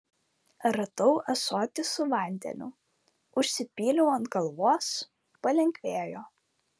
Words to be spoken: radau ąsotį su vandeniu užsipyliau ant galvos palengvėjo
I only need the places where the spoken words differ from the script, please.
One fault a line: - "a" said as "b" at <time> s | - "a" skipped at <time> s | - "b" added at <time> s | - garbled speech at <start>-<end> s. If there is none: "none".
none